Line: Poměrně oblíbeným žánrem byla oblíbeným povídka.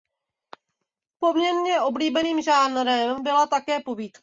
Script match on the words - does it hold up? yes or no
no